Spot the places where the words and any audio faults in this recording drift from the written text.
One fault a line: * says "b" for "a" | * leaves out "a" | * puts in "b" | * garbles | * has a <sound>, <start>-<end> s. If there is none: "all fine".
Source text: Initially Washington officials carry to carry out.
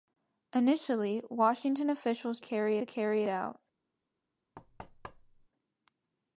* has a thud, 4.5-5.5 s